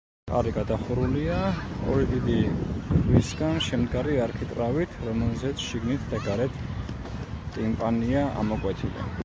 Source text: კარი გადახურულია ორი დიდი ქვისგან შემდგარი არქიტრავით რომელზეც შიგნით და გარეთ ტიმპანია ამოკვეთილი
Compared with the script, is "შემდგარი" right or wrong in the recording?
right